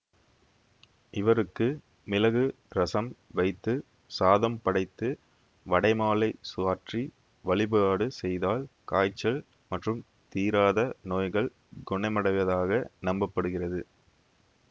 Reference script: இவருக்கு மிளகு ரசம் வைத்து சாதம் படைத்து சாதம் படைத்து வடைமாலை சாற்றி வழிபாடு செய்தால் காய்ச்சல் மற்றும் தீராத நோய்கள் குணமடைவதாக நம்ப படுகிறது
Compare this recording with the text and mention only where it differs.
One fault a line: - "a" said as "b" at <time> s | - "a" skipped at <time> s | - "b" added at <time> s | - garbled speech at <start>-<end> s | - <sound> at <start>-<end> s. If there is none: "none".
- "சாதம் படைத்து" skipped at 5.1 s